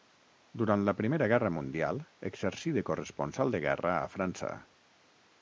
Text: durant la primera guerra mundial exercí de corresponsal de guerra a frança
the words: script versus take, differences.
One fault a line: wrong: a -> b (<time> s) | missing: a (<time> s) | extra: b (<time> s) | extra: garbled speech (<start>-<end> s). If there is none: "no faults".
no faults